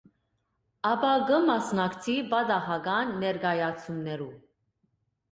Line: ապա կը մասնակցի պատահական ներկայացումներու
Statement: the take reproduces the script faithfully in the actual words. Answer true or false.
true